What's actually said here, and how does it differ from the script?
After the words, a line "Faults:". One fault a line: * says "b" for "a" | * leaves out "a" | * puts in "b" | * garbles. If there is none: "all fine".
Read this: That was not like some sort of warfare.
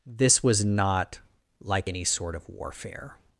This was not like any sort of warfare.
Faults:
* says "This" for "That"
* says "any" for "some"